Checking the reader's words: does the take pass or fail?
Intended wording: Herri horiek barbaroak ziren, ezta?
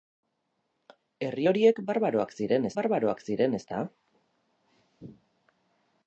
fail